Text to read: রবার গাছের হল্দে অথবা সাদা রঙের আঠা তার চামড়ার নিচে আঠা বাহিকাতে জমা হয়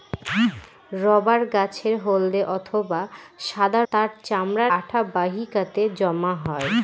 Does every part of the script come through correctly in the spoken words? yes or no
no